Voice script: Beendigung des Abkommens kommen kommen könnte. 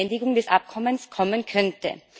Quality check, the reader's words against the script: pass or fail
fail